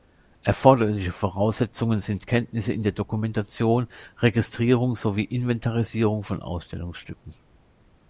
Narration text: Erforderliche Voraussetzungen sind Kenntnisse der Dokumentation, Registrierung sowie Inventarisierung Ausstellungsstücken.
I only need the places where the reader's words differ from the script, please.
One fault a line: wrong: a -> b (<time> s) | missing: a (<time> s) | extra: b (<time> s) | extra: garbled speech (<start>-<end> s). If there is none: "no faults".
extra: in (2.7 s)
extra: von (6.2 s)